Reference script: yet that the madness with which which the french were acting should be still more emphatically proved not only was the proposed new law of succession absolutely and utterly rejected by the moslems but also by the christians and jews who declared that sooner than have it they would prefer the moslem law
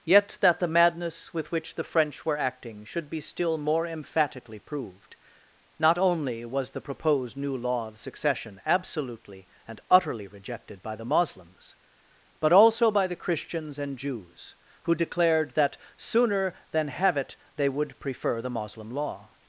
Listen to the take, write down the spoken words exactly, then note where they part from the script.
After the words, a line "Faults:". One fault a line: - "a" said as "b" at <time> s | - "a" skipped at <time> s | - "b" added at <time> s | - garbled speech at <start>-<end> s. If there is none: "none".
yet that the madness with which the french were acting should be still more emphatically proved not only was the proposed new law of succession absolutely and utterly rejected by the moslems but also by the christians and jews who declared that sooner than have it they would prefer the moslem law
Faults:
- "which" skipped at 1.8 s